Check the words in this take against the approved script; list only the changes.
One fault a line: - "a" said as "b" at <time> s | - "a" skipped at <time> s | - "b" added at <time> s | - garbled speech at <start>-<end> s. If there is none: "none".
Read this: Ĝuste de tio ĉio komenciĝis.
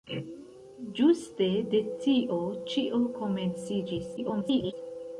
- garbled speech at 4.2-4.7 s